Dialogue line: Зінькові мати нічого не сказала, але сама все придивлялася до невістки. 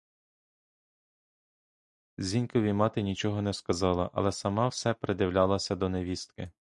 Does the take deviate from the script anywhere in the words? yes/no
no